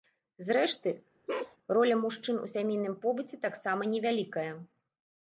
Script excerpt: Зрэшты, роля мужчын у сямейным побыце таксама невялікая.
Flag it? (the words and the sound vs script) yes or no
yes